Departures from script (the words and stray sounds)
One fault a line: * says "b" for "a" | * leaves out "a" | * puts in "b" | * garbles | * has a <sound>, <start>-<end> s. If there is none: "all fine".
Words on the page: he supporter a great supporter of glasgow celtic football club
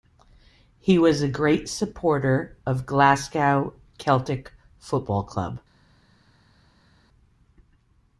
* says "was" for "supporter"